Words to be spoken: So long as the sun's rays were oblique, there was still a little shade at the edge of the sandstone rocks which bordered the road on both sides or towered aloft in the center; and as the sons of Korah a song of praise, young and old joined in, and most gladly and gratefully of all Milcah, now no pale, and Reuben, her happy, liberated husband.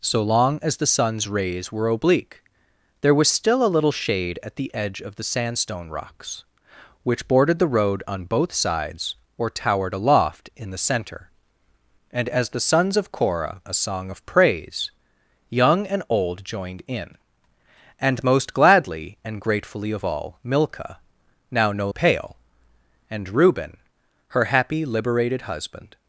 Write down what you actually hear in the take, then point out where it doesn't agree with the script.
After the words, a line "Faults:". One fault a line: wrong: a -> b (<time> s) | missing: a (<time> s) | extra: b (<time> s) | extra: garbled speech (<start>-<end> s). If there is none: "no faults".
So long as the sun's rays were oblique, there was still a little shade at the edge of the sandstone rocks which bordered the road on both sides or towered aloft in the center; and as the sons of Korah a song of praise, young and old joined in, and most gladly and gratefully of all Milcah, now no pale, and Reuben, her happy, liberated husband.
Faults:
no faults